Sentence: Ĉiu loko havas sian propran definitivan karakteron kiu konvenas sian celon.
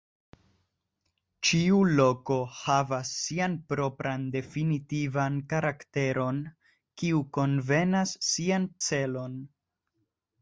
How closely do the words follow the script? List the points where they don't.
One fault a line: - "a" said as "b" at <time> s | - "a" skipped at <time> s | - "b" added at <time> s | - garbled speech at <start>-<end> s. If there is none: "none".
none